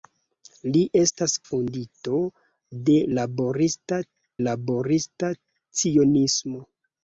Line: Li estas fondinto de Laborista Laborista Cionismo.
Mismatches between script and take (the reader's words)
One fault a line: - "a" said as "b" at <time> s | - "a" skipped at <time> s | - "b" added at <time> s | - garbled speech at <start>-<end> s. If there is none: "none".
none